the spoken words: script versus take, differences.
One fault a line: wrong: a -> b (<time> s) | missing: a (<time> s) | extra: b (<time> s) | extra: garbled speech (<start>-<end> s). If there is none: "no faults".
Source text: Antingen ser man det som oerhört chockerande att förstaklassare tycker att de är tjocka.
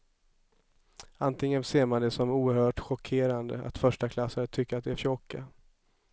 no faults